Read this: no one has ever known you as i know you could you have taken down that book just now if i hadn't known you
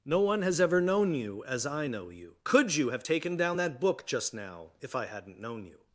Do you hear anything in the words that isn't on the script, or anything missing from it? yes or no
no